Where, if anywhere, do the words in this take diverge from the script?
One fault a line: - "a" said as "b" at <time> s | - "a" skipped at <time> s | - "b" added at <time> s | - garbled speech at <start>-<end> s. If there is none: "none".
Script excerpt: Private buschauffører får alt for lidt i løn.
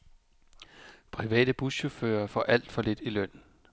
none